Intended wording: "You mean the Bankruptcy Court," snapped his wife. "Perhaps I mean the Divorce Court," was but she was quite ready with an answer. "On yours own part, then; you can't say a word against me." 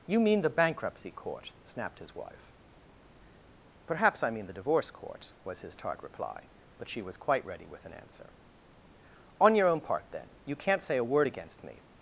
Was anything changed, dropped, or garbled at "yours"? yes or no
yes